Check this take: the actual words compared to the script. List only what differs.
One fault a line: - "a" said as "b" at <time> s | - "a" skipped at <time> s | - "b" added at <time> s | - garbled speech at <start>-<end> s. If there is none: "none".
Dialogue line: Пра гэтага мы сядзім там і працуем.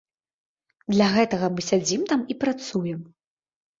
- "Пра" said as "Для" at 0.9 s